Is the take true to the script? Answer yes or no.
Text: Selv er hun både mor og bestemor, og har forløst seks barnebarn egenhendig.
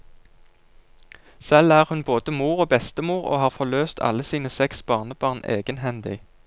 no